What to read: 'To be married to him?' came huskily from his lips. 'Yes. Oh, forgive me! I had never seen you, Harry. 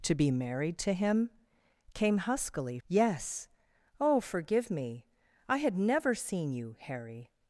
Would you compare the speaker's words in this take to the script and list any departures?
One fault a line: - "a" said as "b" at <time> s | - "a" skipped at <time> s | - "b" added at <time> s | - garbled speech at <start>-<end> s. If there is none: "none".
- "from his lips" skipped at 2.8 s